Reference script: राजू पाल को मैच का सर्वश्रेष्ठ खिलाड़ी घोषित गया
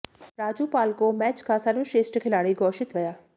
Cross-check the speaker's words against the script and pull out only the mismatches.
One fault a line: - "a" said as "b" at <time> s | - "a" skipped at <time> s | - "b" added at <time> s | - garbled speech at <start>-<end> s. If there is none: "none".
none